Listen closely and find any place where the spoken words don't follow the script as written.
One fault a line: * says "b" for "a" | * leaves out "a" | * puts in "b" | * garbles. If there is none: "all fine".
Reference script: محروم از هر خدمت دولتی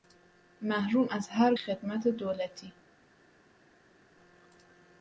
all fine